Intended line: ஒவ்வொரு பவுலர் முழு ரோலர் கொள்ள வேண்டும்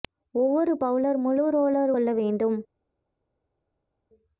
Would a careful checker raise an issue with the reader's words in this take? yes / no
no